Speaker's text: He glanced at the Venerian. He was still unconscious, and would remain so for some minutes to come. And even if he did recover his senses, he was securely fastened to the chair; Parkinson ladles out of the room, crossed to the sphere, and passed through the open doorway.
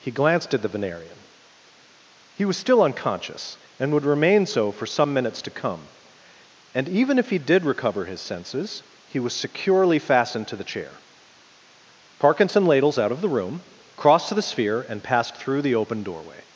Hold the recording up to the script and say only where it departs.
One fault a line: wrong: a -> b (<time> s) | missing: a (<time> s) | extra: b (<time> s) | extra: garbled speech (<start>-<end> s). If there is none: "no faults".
no faults